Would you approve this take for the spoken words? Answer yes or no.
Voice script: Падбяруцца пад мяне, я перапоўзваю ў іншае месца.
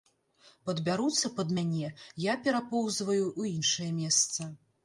yes